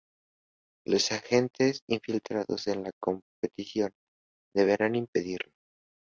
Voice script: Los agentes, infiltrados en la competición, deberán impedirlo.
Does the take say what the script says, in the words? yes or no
yes